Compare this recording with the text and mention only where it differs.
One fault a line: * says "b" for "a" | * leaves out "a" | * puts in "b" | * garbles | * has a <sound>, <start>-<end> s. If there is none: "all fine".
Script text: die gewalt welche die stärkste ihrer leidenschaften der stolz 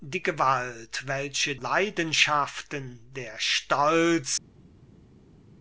* leaves out "die stärkste ihrer"